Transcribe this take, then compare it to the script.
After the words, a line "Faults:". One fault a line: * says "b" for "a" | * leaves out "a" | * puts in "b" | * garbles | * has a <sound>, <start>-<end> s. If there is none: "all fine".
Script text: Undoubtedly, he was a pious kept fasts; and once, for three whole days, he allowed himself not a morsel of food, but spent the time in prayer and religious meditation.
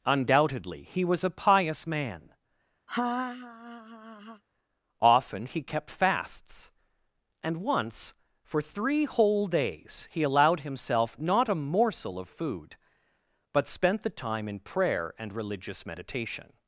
Undoubtedly, he was a pious man. Often he kept fasts; and once, for three whole days, he allowed himself not a morsel of food, but spent the time in prayer and religious meditation.
Faults:
* puts in "man Often he"
* has a laugh, 2.9-4.4 s